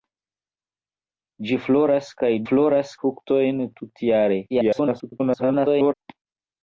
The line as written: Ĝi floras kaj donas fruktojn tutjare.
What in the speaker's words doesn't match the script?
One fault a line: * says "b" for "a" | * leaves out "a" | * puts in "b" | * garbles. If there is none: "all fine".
* says "floras" for "donas"
* garbles